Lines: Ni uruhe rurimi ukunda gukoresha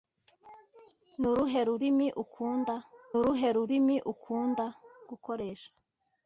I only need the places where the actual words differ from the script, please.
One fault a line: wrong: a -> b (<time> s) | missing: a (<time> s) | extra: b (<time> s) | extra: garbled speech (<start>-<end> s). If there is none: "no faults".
extra: uruhe rurimi ukunda (3.2 s)